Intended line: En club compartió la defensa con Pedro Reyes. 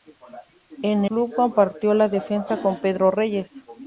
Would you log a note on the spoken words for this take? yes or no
no